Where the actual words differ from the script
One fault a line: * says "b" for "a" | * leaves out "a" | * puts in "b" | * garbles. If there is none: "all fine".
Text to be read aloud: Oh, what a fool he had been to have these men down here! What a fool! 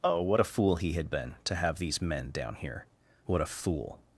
all fine